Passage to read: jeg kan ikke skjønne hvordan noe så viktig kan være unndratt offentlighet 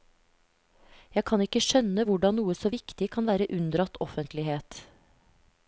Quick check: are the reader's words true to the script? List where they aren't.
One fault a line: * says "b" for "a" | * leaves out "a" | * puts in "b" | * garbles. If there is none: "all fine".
all fine